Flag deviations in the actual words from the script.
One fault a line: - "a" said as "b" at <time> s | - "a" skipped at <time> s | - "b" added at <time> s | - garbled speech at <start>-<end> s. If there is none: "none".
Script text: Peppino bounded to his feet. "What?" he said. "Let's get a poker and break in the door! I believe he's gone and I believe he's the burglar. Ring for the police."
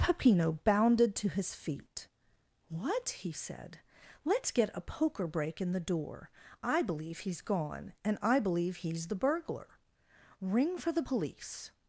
- "and" skipped at 5.3 s